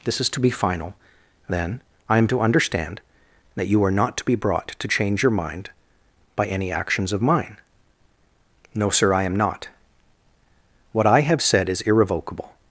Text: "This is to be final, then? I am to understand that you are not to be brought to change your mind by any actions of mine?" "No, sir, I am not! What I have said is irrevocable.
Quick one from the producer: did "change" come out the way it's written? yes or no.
yes